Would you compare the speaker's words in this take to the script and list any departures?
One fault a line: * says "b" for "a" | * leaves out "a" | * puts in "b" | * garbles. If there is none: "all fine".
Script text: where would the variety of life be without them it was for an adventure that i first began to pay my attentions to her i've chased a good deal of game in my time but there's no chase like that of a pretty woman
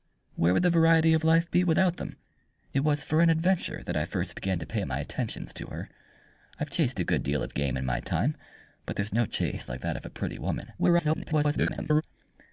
* garbles